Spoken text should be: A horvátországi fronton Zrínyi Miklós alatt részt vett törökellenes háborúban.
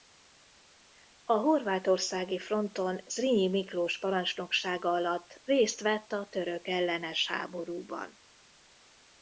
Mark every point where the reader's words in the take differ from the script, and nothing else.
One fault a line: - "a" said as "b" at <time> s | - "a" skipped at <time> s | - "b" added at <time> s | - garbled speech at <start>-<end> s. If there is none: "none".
- "parancsnoksága" added at 4.0 s
- "a" added at 6.1 s